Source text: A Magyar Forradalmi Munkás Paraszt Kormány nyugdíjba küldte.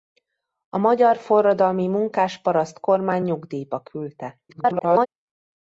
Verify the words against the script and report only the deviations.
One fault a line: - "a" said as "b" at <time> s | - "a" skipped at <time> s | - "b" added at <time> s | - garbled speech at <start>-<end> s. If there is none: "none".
- garbled speech at 4.5-5.1 s